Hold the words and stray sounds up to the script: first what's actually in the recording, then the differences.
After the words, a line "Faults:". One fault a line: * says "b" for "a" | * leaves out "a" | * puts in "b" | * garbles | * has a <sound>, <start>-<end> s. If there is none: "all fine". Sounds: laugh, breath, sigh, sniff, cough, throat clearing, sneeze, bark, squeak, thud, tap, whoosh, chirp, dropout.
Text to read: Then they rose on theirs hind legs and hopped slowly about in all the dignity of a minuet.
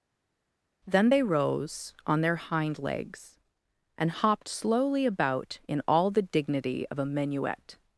Then they rose on their hind legs and hopped slowly about in all the dignity of a minuet.
Faults:
* says "their" for "theirs"